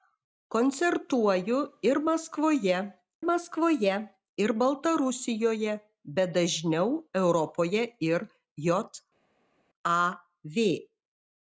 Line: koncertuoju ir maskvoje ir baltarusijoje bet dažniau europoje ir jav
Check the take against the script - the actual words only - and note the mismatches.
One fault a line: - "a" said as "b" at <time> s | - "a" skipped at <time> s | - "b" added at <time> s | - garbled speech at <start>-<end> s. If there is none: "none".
- "maskvoje" added at 3.3 s